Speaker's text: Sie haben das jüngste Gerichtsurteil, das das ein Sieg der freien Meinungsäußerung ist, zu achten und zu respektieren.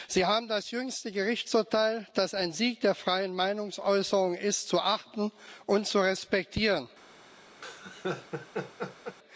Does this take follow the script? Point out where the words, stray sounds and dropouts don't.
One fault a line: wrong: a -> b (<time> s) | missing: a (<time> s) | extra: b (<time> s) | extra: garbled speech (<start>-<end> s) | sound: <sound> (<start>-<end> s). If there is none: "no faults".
missing: das (2.3 s)
sound: laugh (7.6-9.2 s)